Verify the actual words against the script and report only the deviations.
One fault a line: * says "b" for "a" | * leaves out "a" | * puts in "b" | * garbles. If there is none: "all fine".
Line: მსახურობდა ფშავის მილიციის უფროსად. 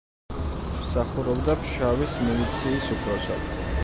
all fine